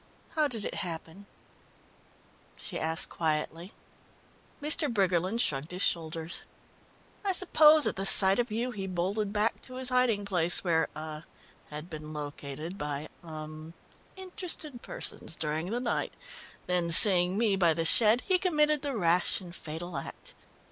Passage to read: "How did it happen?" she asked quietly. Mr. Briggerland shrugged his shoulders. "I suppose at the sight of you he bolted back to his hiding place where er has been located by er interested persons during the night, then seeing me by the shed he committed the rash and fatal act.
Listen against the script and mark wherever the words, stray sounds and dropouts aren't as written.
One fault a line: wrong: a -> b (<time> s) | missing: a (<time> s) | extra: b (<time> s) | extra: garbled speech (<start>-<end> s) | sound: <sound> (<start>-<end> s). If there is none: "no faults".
wrong: has -> had (11.7 s)